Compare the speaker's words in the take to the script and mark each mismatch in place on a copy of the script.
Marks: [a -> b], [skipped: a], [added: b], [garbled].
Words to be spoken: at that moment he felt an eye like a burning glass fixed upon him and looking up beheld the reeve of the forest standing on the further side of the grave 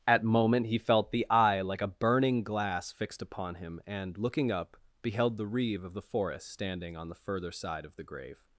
at [skipped: that] moment he felt [an -> the] eye like a burning glass fixed upon him and looking up beheld the reeve of the forest standing on the further side of the grave